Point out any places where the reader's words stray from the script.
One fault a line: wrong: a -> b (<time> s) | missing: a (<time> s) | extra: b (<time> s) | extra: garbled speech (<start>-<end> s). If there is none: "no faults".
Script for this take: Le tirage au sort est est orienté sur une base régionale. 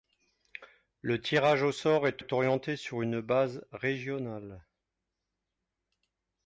no faults